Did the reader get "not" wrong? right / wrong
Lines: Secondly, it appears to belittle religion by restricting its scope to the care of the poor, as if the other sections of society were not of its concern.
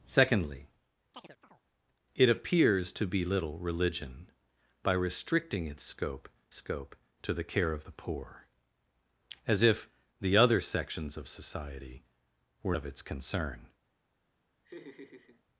wrong